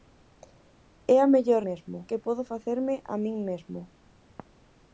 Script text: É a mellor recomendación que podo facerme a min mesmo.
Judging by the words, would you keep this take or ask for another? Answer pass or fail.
fail